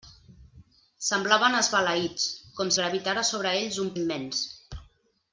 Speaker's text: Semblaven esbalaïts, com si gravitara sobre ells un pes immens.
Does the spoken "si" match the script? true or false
false